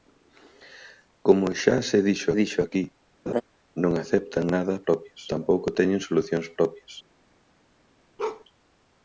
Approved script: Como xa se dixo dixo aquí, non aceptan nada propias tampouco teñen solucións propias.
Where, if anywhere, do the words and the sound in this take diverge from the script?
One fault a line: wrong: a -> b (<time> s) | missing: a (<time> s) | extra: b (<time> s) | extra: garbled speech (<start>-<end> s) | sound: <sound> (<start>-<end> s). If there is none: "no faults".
sound: laugh (3.3-3.4 s)
sound: bark (8.2-8.4 s)